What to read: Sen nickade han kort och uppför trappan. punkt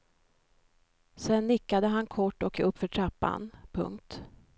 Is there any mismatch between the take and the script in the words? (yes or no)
no